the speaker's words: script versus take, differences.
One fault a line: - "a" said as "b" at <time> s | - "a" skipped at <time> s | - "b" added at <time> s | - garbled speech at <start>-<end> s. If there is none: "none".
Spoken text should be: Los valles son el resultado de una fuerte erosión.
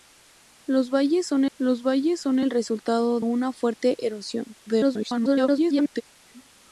- "los valles son" added at 1.6 s
- "de" skipped at 3.2 s
- garbled speech at 4.7-6.0 s